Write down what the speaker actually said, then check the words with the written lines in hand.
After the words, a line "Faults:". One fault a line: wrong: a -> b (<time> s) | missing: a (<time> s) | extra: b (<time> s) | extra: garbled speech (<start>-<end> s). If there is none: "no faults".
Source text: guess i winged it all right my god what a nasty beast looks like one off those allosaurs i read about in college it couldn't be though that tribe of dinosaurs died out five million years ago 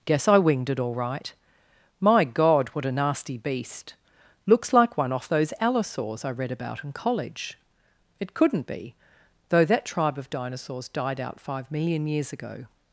guess i winged it all right my god what a nasty beast looks like one off those allosaurs i read about in college it couldn't be though that tribe of dinosaurs died out five million years ago
Faults:
no faults